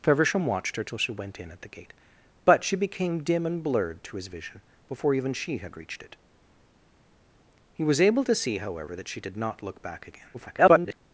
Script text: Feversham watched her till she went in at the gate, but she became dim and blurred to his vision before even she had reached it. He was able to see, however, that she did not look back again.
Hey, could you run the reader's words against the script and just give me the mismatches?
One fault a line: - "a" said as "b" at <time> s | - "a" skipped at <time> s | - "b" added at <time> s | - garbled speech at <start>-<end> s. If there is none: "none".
- garbled speech at 10.3-10.9 s